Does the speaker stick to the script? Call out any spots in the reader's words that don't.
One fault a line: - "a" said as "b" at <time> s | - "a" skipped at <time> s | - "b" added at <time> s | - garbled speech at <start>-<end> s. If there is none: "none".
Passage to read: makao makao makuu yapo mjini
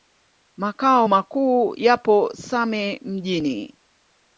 - "makao" skipped at 1.1 s
- "same" added at 2.3 s